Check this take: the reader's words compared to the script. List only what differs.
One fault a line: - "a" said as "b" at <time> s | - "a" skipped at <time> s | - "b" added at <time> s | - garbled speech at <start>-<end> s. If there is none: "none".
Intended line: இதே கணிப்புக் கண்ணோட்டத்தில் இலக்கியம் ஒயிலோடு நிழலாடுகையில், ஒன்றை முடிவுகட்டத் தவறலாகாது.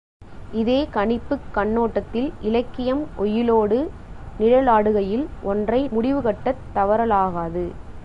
none